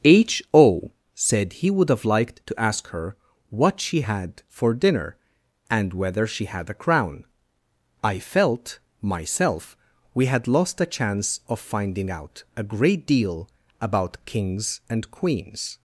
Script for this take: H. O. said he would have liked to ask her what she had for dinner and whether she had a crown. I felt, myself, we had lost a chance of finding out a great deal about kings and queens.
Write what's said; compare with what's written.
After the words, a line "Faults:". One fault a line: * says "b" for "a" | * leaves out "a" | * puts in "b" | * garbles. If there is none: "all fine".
H. O. said he would have liked to ask her what she had for dinner and whether she had a crown. I felt, myself, we had lost a chance of finding out a great deal about kings and queens.
Faults:
all fine